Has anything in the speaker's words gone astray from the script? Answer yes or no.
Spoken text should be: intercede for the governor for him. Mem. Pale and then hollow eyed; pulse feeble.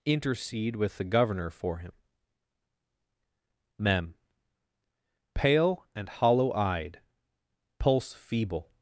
yes